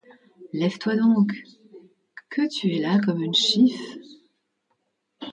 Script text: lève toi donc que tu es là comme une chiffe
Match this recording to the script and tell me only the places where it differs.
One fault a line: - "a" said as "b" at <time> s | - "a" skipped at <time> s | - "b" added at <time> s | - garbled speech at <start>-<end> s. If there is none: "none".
none